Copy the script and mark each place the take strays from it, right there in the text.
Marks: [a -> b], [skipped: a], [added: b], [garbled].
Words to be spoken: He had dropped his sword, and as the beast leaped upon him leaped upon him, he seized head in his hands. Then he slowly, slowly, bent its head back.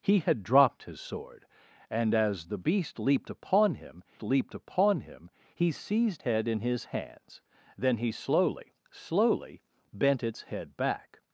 He had dropped his sword, and as the beast leaped upon him leaped upon him, he seized head in his hands. Then he slowly, slowly, bent its head back.